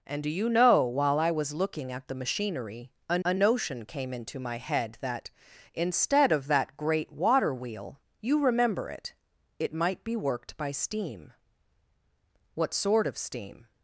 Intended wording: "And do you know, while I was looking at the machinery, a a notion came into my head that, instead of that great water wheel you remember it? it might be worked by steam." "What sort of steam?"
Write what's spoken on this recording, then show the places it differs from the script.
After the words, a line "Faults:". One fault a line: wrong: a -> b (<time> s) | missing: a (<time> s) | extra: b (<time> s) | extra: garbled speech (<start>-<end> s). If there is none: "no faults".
"And do you know, while I was looking at the machinery, a a notion came into my head that, instead of that great water wheel you remember it? it might be worked by steam." "What sort of steam?"
Faults:
no faults